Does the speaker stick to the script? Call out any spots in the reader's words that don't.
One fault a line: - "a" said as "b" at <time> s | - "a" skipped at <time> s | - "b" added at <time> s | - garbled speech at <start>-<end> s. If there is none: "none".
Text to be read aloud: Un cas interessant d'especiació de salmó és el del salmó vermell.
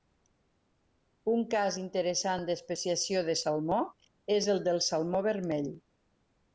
none